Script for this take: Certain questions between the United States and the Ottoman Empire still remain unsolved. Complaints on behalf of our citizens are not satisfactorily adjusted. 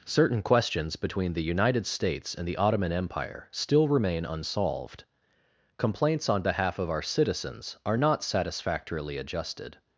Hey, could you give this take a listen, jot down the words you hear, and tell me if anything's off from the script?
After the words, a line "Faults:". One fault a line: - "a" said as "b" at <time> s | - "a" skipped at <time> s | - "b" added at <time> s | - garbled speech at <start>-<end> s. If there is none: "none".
Certain questions between the United States and the Ottoman Empire still remain unsolved. Complaints on behalf of our citizens are not satisfactorily adjusted.
Faults:
none